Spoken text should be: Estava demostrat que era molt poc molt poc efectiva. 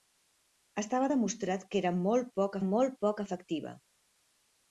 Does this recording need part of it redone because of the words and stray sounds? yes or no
no